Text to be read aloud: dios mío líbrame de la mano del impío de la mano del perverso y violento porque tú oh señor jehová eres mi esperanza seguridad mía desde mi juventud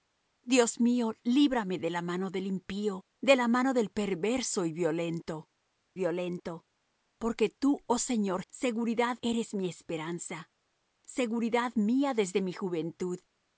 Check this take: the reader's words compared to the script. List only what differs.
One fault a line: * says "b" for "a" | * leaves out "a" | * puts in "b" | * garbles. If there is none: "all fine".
* puts in "violento"
* says "seguridad" for "jehová"